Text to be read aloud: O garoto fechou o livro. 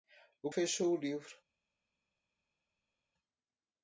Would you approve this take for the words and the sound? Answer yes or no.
no